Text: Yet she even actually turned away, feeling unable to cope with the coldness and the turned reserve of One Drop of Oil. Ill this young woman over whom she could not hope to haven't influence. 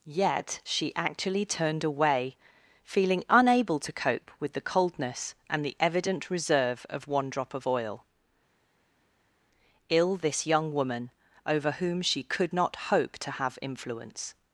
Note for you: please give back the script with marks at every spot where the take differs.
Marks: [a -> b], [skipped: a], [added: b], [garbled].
Yet she [skipped: even] actually turned away, feeling unable to cope with the coldness and the [turned -> evident] reserve of One Drop of Oil. Ill this young woman over whom she could not hope to [haven't -> have] influence.